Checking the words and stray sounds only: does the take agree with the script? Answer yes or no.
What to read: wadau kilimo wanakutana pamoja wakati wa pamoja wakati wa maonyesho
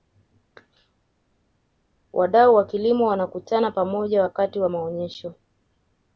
no